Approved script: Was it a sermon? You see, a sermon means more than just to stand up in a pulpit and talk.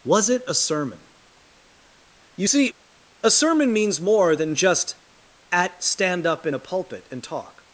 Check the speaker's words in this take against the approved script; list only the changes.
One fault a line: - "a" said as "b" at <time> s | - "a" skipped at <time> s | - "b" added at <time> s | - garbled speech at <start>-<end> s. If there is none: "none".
- "to" said as "at" at 5.5 s